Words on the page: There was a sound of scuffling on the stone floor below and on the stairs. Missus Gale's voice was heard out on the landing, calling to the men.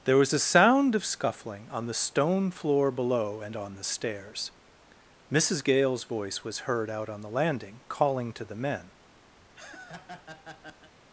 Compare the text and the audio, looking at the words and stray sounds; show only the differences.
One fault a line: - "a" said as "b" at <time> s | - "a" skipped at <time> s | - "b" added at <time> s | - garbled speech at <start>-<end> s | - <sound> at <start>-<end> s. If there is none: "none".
- laugh at 9.4-10.9 s